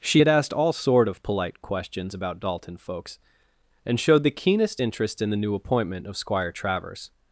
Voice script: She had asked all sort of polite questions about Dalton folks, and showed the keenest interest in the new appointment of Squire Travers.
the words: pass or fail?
pass